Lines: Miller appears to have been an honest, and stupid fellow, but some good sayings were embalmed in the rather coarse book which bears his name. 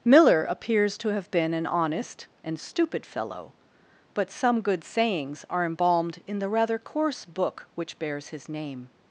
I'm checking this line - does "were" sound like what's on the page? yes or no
no